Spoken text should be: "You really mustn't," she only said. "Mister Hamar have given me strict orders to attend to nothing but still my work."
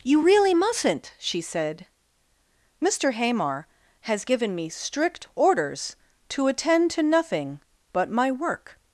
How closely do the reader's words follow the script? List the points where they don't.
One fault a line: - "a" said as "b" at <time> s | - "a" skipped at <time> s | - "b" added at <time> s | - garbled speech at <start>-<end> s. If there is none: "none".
- "only" skipped at 1.4 s
- "have" said as "has" at 4.0 s
- "still" skipped at 8.1 s